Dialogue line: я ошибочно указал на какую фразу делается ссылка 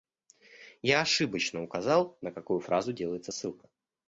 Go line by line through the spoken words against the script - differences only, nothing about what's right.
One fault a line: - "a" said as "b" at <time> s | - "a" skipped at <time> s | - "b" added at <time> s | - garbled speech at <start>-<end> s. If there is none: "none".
none